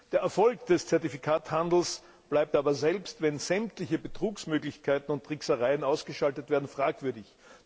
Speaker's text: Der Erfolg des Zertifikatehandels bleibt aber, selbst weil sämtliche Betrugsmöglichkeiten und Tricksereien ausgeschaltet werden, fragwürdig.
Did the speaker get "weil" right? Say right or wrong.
wrong